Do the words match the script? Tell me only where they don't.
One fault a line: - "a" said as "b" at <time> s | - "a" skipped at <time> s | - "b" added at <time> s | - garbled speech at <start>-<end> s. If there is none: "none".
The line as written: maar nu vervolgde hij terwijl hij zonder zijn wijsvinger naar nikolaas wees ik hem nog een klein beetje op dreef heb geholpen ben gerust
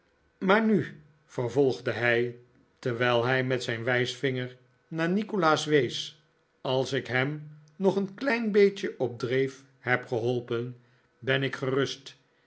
- "zonder" said as "met" at 3.4 s
- "als" added at 6.6 s
- "ik" added at 11.4 s